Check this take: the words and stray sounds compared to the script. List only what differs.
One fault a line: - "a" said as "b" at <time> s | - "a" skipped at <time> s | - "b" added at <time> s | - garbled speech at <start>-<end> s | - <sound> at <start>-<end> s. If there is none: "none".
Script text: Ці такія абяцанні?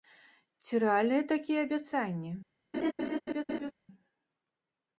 - "рэальныя" added at 0.8 s
- laugh at 2.7-3.7 s